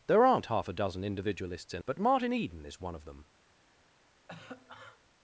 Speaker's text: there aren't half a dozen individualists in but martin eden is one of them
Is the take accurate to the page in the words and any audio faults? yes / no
no